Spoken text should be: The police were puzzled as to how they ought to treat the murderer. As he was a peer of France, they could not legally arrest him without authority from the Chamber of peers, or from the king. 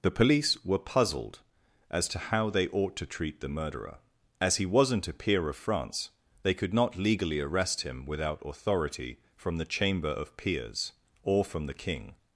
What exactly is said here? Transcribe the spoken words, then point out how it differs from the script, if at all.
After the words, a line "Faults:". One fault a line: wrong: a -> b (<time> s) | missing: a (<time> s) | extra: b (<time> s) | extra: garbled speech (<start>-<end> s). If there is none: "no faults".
The police were puzzled as to how they ought to treat the murderer. As he wasn't a peer of France, they could not legally arrest him without authority from the Chamber of peers, or from the king.
Faults:
wrong: was -> wasn't (4.7 s)